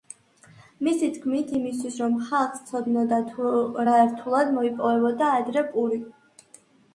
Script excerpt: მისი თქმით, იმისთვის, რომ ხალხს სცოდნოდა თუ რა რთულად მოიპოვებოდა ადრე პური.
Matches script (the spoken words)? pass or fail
pass